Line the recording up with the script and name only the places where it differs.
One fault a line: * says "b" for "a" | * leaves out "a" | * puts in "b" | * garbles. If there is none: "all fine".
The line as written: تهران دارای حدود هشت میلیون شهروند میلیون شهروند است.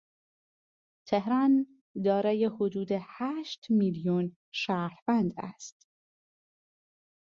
* leaves out "میلیون شهروند"